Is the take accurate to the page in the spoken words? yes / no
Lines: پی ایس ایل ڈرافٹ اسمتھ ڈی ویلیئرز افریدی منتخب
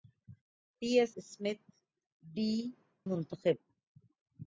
no